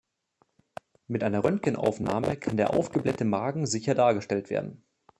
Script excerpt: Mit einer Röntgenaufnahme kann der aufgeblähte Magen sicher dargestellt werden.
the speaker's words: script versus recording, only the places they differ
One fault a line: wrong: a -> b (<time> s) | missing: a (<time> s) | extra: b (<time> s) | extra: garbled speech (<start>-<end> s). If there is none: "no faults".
no faults